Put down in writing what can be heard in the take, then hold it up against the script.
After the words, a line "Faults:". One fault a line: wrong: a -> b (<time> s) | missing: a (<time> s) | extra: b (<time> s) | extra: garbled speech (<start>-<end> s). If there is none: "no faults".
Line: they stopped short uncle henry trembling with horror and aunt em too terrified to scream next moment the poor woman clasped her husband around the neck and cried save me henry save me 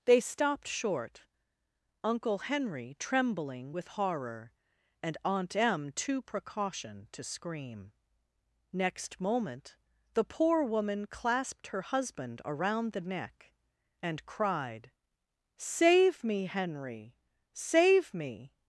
they stopped short uncle henry trembling with horror and aunt em too precaution to scream next moment the poor woman clasped her husband around the neck and cried save me henry save me
Faults:
wrong: terrified -> precaution (6.2 s)